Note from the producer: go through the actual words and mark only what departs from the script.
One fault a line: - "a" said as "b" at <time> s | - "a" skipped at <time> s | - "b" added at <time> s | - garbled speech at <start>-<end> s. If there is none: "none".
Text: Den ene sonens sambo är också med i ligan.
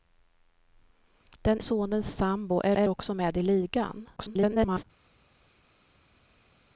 - "ene" skipped at 1.6 s
- "är" added at 2.8 s
- garbled speech at 4.2-4.8 s